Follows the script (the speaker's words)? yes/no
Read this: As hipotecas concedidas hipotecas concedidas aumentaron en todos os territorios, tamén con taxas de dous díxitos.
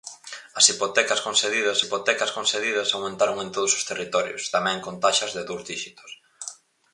yes